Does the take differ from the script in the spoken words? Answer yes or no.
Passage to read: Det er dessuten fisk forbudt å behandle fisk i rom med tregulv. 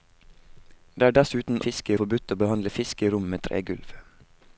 no